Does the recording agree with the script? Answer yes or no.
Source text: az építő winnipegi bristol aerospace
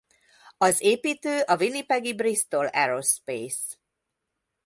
no